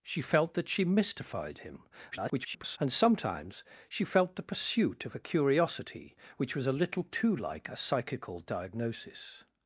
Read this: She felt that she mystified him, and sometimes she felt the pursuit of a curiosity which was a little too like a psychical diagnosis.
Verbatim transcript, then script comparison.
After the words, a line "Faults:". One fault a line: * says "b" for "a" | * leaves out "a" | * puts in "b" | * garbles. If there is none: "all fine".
She felt that she mystified him, [garbled] and sometimes she felt the pursuit of a curiosity which was a little too like a psychical diagnosis.
Faults:
* garbles